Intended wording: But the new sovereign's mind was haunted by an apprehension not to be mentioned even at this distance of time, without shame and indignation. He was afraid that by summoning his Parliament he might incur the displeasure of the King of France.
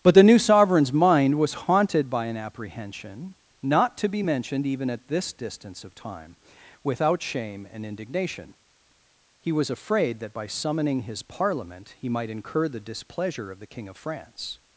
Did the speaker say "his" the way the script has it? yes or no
yes